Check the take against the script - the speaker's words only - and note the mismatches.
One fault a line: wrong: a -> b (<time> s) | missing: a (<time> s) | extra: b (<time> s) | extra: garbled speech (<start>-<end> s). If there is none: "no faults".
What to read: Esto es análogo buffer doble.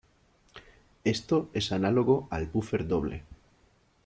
extra: al (2.3 s)